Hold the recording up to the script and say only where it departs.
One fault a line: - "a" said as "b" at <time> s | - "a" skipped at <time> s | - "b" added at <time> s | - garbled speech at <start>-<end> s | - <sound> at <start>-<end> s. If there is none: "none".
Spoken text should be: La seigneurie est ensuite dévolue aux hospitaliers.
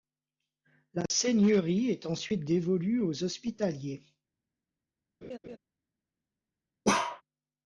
- laugh at 5.2-5.6 s
- bark at 6.8-7.2 s